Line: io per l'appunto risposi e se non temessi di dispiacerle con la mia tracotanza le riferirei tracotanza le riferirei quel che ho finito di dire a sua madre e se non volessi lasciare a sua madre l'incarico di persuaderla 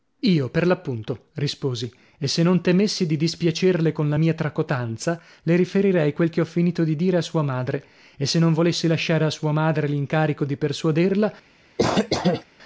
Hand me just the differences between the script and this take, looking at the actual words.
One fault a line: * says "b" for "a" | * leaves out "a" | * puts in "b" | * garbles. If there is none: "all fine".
* leaves out "tracotanza le riferirei"